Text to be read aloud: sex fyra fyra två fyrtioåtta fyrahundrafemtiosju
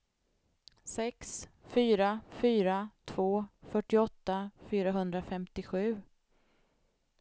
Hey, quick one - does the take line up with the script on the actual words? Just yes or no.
yes